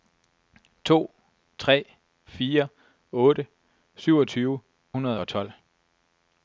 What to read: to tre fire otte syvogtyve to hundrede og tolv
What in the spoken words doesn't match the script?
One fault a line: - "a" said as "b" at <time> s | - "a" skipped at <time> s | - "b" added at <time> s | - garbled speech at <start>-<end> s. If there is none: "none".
- "to" skipped at 4.6 s